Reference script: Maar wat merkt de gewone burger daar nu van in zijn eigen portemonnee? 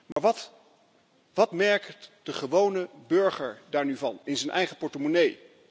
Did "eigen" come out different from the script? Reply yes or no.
no